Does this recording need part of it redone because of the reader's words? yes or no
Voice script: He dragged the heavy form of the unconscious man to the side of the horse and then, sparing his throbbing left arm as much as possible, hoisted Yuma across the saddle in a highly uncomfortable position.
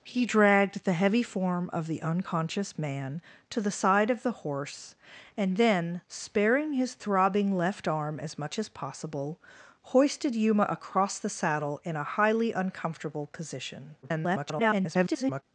yes